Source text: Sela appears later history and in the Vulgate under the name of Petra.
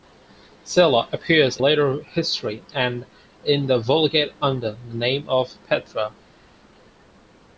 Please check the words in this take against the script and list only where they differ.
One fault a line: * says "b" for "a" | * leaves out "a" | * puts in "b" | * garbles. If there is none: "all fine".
all fine